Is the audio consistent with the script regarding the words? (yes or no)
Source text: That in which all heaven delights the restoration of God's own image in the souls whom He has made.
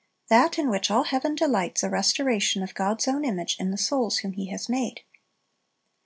yes